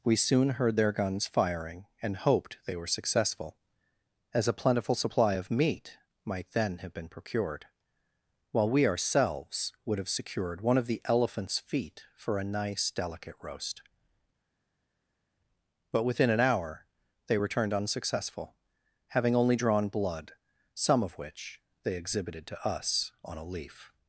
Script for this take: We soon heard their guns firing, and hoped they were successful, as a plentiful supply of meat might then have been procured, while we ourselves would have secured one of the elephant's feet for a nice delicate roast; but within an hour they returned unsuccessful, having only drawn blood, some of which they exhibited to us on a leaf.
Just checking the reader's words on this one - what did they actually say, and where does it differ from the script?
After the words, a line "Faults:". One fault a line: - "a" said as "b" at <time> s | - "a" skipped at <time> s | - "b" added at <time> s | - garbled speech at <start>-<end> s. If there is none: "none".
We soon heard their guns firing, and hoped they were successful, as a plentiful supply of meat might then have been procured, while we ourselves would have secured one of the elephant's feet for a nice delicate roast; but within an hour they returned unsuccessful, having only drawn blood, some of which they exhibited to us on a leaf.
Faults:
none